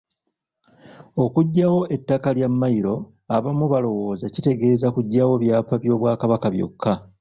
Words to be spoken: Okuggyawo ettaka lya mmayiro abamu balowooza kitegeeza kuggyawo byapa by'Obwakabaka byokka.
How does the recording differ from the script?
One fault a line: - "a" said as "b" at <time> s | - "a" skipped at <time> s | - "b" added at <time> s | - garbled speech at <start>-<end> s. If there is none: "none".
none